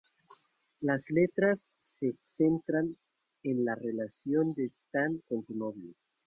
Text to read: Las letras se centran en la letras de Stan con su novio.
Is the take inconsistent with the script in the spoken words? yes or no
yes